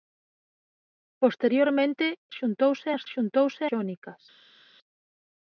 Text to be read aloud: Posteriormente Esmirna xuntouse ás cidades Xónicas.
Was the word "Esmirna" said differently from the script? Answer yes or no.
yes